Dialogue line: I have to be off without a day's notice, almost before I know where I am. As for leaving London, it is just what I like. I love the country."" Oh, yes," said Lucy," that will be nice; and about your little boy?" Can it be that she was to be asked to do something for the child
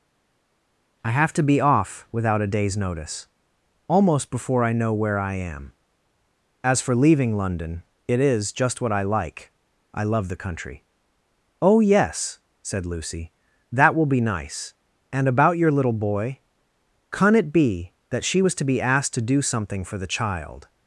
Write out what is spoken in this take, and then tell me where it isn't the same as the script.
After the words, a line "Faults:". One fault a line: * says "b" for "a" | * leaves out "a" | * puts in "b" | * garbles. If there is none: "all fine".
I have to be off without a day's notice, almost before I know where I am. As for leaving London, it is just what I like. I love the country."" Oh, yes," said Lucy," that will be nice; and about your little boy?" Can it be that she was to be asked to do something for the child
Faults:
all fine